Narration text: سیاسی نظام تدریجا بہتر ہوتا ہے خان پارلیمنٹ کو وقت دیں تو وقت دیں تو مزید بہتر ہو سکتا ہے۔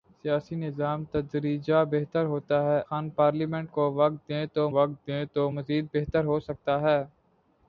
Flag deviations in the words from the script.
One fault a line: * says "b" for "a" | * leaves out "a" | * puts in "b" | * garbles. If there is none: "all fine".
all fine